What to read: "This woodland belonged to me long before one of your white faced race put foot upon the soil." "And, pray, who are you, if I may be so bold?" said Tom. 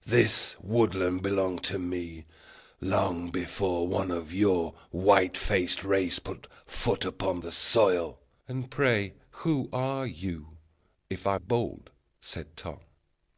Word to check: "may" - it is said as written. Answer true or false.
false